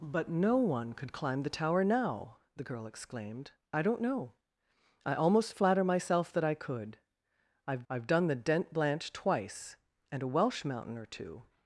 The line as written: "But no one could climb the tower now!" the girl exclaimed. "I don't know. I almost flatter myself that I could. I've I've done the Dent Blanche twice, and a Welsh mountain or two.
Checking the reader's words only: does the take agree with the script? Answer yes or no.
yes